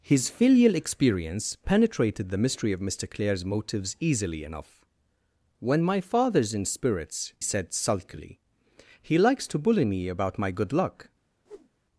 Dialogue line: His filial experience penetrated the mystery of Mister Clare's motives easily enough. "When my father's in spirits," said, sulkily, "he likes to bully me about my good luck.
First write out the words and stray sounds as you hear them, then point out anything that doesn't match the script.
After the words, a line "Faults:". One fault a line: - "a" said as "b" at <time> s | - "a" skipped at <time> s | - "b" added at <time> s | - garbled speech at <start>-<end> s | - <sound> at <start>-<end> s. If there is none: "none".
His filial experience penetrated the mystery of Mister Clare's motives easily enough. "When my father's in spirits," said, sulkily, "he likes to bully me about my good luck.
Faults:
- whoosh at 11.5-11.7 s